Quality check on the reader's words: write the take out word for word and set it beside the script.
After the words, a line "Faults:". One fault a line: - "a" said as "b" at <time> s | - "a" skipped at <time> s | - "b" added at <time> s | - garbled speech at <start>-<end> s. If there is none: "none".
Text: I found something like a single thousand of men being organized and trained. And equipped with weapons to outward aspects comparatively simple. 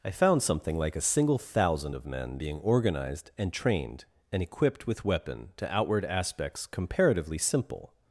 I found something like a single thousand of men being organized and trained. And equipped with weapon to outward aspects comparatively simple.
Faults:
- "weapons" said as "weapon" at 5.0 s